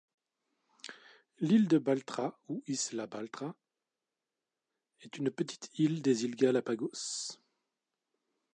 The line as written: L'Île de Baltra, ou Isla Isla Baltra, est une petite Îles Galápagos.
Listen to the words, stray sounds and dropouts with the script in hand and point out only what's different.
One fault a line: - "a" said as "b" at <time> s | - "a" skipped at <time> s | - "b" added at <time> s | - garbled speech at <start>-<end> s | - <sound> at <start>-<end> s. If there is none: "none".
- "Isla" skipped at 3.1 s
- "île des" added at 5.8 s